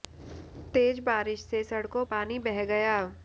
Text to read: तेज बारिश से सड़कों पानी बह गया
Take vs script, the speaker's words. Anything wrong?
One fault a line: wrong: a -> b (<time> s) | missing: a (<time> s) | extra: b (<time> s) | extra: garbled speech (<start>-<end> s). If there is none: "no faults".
no faults